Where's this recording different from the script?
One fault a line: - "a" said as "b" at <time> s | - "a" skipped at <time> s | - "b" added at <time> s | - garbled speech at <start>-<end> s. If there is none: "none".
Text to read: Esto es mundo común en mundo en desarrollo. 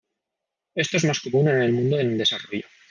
- "mundo" said as "más" at 1.1 s
- "el" added at 1.6 s